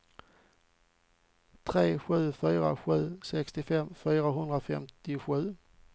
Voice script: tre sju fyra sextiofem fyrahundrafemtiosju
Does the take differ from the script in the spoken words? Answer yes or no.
yes